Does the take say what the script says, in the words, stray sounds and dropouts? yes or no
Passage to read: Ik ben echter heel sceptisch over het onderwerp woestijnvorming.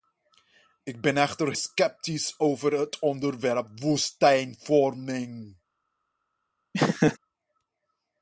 no